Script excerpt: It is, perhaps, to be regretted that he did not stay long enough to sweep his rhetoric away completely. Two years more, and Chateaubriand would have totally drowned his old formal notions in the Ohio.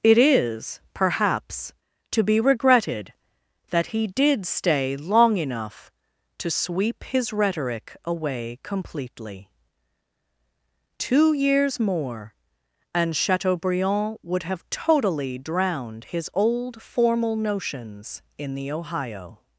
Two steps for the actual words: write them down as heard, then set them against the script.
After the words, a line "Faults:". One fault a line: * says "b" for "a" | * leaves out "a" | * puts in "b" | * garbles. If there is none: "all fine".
It is, perhaps, to be regretted that he did stay long enough to sweep his rhetoric away completely. Two years more, and Chateaubriand would have totally drowned his old formal notions in the Ohio.
Faults:
* leaves out "not"